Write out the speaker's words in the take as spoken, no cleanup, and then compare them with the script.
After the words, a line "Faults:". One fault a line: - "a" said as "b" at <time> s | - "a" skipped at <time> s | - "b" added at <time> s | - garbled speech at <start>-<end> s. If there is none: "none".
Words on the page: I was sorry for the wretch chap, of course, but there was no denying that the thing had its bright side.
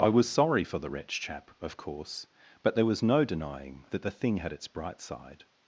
I was sorry for the wretch chap, of course, but there was no denying that the thing had its bright side.
Faults:
none